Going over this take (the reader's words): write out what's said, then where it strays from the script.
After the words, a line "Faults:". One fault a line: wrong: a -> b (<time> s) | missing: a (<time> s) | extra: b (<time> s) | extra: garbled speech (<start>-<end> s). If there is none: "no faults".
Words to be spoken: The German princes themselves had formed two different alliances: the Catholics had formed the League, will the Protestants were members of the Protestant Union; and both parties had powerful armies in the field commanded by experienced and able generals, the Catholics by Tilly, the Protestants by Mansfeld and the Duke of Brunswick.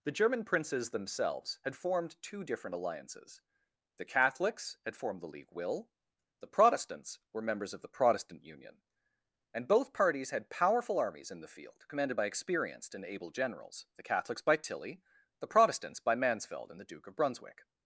The German princes themselves had formed two different alliances: the Catholics had formed the League, will the Protestants were members of the Protestant Union; and both parties had powerful armies in the field commanded by experienced and able generals, the Catholics by Tilly, the Protestants by Mansfeld and the Duke of Brunswick.
Faults:
no faults